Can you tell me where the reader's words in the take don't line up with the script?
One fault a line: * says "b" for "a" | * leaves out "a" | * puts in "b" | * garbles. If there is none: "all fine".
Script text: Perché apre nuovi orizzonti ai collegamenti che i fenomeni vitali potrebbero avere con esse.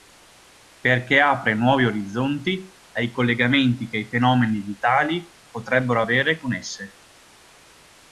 all fine